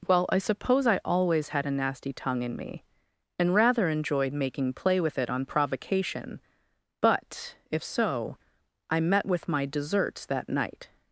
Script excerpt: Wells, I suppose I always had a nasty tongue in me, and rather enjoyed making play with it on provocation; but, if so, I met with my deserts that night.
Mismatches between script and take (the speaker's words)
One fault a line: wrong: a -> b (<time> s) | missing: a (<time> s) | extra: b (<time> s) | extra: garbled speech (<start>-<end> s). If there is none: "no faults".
wrong: Wells -> Well (0.1 s)